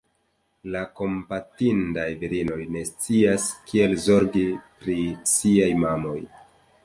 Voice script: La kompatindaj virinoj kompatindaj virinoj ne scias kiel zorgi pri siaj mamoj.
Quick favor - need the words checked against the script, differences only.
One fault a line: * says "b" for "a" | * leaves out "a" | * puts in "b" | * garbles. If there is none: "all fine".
* leaves out "kompatindaj virinoj"